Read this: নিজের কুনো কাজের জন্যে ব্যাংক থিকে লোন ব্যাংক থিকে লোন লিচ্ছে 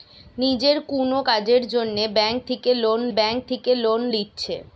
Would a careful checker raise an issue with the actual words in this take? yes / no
no